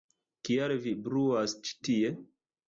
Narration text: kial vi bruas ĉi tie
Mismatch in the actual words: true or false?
false